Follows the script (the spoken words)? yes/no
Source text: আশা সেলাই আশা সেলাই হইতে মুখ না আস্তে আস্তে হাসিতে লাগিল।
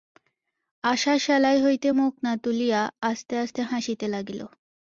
no